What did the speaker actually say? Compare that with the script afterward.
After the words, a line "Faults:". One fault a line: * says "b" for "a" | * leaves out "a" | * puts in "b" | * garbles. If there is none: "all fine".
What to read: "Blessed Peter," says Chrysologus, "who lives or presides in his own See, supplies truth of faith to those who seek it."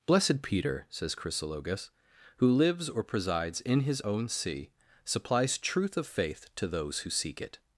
"Blessed Peter," says Chrysologus, "who lives or presides in his own See, supplies truth of faith to those who seek it."
Faults:
all fine